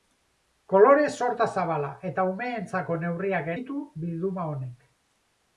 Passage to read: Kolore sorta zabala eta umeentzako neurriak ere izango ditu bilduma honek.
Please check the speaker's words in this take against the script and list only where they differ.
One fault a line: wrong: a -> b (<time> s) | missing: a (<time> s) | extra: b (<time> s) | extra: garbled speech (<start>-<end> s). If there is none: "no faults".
missing: ere izango (3.5 s)